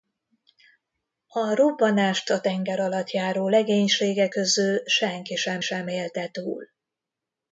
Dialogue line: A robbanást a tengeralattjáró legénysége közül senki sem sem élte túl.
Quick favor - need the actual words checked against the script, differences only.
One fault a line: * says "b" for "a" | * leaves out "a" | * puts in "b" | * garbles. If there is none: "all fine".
all fine